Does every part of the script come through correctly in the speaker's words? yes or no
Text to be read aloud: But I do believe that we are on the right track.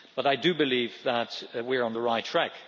yes